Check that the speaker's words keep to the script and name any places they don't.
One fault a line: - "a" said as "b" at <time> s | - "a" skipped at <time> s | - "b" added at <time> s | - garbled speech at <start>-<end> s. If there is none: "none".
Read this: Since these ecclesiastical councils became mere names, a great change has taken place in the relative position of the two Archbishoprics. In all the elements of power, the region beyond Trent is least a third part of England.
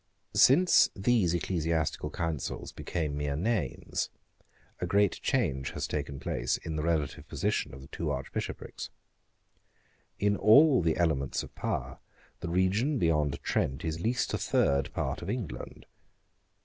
none